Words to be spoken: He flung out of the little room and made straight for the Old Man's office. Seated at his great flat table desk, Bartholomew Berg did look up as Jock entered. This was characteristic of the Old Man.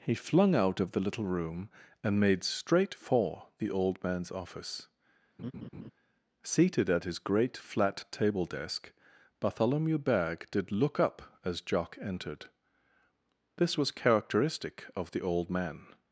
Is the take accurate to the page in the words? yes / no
yes